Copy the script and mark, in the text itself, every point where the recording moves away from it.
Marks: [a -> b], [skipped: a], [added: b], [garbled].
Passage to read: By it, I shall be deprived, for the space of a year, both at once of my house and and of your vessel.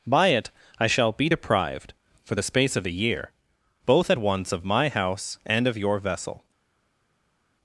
By it, I shall be deprived, for the space of a year, both at once of my house and [skipped: and] of your vessel.